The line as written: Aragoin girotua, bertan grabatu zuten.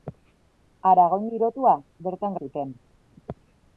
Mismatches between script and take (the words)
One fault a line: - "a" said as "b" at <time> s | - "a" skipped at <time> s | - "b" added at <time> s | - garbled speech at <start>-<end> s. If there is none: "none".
- "grabatu" skipped at 2.4 s